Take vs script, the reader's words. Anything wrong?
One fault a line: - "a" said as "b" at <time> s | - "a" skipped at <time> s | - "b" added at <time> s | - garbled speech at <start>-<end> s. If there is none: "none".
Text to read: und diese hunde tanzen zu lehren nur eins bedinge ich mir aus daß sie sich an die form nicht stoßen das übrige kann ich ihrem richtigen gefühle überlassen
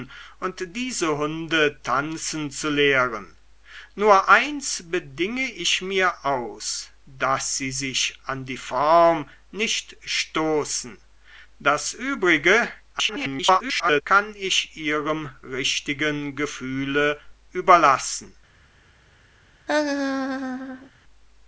- garbled speech at 12.9-14.0 s